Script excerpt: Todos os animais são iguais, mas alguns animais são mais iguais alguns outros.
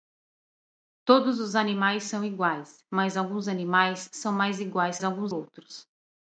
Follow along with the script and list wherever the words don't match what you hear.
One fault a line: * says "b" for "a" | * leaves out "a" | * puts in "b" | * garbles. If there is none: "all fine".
all fine